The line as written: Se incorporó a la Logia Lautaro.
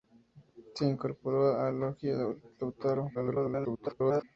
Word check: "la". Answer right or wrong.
wrong